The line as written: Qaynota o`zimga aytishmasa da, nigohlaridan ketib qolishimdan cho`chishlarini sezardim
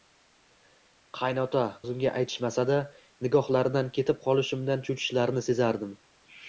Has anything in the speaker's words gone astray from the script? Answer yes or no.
no